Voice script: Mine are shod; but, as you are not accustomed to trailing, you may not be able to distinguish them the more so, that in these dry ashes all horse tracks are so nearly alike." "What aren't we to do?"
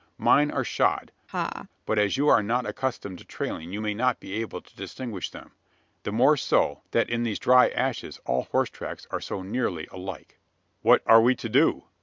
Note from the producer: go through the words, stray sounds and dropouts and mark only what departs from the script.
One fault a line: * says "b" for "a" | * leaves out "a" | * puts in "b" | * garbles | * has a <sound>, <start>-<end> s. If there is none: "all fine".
* has a laugh, 1.3-1.7 s
* says "are" for "aren't"